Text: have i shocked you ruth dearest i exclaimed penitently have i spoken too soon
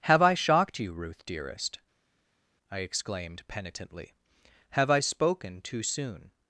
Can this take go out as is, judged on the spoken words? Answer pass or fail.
pass